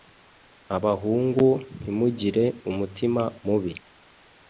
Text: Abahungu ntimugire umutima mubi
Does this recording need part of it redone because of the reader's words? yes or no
no